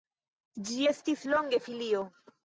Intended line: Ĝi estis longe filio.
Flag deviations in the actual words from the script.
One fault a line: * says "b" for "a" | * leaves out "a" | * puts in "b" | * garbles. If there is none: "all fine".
all fine